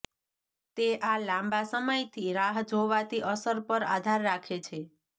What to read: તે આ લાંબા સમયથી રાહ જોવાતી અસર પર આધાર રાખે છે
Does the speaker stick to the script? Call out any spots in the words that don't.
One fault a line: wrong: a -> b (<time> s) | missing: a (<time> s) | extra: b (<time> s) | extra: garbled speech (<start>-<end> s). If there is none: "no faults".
no faults